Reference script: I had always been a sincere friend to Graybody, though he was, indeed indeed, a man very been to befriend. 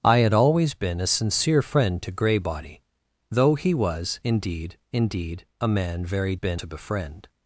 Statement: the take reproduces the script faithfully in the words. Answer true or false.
true